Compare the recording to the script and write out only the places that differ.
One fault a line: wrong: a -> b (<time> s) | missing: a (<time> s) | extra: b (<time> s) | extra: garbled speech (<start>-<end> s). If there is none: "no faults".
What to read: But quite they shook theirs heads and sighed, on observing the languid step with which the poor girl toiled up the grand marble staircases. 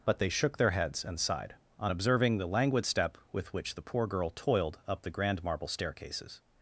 missing: quite (0.2 s)
wrong: theirs -> their (0.6 s)